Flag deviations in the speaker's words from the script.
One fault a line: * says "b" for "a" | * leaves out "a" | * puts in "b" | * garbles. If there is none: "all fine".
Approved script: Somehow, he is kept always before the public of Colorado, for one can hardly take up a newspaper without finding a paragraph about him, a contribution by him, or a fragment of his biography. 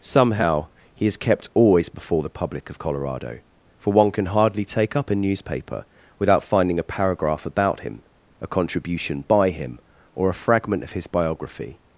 all fine